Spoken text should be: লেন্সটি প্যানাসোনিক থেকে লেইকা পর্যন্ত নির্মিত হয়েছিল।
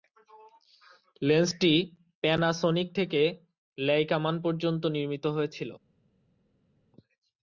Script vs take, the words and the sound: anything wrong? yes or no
yes